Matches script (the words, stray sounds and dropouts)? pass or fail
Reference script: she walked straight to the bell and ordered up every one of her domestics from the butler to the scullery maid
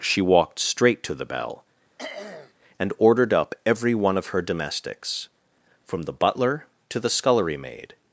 fail